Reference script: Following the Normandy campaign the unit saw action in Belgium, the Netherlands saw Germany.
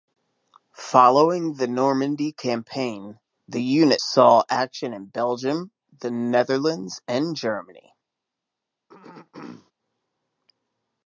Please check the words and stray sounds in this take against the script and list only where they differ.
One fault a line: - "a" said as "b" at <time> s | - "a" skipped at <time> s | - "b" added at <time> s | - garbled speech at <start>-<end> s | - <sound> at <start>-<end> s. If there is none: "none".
- "saw" said as "and" at 7.1 s
- throat clearing at 8.9-9.7 s